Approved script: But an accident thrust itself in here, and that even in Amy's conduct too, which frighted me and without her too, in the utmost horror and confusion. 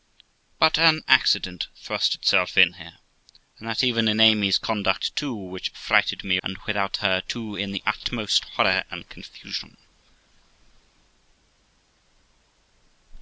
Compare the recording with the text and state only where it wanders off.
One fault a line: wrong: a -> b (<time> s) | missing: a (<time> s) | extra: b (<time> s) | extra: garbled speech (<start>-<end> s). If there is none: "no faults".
no faults